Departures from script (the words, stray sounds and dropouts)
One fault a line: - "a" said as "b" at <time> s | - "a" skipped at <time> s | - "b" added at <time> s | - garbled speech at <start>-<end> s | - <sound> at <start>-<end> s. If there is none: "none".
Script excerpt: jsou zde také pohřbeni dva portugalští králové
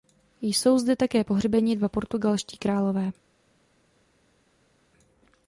none